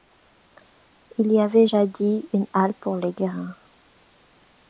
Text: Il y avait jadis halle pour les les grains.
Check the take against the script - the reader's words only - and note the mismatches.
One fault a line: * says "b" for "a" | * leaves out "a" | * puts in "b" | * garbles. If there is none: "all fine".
* puts in "une"
* leaves out "les"